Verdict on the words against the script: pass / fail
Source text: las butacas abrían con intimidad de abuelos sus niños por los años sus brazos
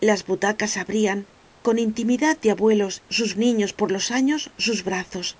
pass